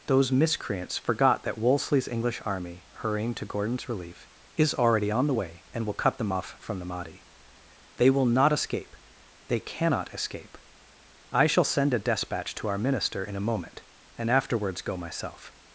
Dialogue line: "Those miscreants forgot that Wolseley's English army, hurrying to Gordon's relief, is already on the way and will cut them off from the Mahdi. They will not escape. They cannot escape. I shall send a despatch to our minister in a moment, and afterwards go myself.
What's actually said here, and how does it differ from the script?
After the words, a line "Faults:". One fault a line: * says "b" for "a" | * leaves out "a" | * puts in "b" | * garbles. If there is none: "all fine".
"Those miscreants forgot that Wolseley's English army, hurrying to Gordon's relief, is already on the way and will cut them off from the Mahdi. They will not escape. They cannot escape. I shall send a despatch to our minister in a moment, and afterwards go myself.
Faults:
all fine